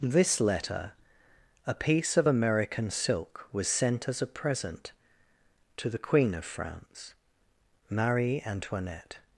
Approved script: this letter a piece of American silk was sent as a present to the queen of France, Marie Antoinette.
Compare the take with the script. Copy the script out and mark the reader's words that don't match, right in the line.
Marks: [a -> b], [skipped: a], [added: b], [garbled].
this letter a piece of American silk was sent as a present to the queen of France, Marie Antoinette.